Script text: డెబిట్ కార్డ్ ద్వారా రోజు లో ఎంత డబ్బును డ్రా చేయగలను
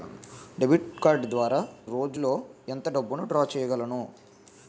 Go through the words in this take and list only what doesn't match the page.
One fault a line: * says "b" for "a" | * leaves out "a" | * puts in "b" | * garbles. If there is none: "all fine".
all fine